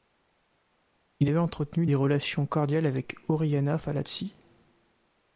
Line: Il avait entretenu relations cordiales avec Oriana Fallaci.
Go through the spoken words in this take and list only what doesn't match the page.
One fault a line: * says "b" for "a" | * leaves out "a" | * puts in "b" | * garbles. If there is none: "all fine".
* puts in "des"